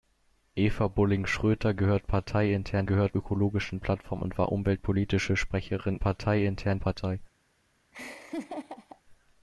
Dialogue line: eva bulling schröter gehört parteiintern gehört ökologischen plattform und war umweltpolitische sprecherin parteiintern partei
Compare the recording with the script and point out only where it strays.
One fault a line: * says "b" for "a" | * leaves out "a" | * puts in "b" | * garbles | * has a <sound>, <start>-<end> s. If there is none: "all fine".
* has a laugh, 7.9-9.0 s